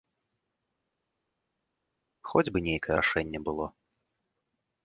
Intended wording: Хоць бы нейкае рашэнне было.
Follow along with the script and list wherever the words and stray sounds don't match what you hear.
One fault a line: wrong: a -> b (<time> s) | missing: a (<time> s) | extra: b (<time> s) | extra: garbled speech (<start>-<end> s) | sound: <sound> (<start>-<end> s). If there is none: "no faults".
no faults